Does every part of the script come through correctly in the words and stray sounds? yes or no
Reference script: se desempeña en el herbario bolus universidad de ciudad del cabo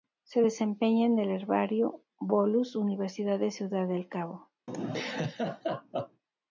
no